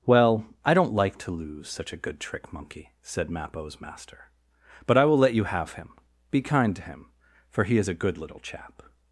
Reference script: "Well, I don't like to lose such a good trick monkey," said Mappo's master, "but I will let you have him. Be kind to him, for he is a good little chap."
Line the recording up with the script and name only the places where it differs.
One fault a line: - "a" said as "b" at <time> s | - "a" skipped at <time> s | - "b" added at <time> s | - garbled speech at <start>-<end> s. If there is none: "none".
none